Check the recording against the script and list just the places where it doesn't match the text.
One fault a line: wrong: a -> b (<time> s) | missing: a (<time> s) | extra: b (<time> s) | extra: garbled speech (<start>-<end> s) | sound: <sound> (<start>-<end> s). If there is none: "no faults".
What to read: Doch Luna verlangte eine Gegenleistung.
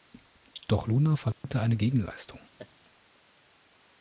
sound: dropout (1.3-1.4 s)
sound: laugh (2.6-2.7 s)